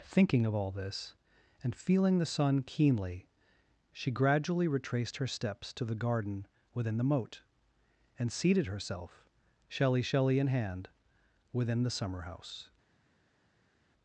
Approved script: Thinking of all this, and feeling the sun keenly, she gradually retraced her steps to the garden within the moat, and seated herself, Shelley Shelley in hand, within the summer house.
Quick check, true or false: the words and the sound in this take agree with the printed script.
true